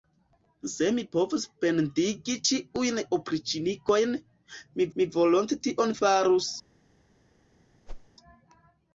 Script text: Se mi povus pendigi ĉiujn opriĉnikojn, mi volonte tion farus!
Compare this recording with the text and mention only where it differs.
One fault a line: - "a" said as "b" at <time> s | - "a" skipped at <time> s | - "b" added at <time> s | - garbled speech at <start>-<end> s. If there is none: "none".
- "mi" added at 5.0 s